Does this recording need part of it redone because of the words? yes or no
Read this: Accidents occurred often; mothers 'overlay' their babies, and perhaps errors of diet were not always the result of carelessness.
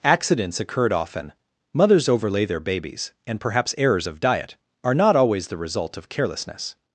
yes